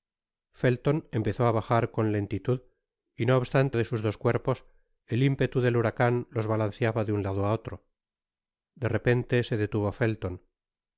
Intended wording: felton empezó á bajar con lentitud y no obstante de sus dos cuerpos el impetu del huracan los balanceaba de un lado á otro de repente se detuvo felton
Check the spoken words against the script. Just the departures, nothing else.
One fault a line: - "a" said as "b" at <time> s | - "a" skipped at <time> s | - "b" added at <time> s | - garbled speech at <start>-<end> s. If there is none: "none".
none